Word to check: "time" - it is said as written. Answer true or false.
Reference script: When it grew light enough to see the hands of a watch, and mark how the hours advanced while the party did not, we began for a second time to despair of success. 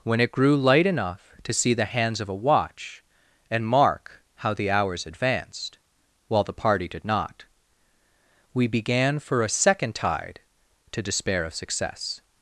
false